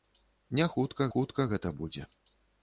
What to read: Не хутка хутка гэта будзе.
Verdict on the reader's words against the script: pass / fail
pass